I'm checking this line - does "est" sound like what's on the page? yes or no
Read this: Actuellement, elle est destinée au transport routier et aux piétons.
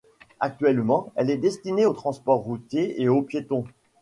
yes